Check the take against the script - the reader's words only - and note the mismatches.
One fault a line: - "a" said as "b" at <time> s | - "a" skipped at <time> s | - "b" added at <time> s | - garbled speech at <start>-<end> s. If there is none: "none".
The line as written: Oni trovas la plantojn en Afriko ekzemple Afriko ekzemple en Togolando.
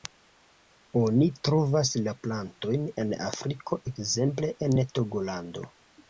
- "Afriko ekzemple" skipped at 4.5 s